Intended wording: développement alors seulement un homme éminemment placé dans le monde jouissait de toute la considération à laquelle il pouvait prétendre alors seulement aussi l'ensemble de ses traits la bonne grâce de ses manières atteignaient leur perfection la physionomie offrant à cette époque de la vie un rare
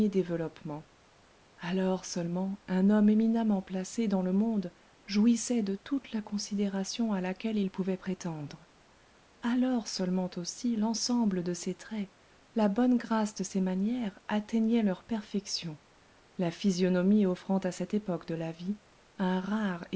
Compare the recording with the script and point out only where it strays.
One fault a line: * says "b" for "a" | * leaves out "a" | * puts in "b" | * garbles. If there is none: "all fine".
all fine